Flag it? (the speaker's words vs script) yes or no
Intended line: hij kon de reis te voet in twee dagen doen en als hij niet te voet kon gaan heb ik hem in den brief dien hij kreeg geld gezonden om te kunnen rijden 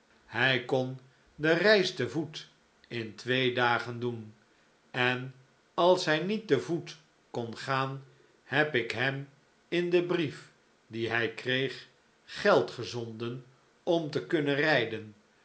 no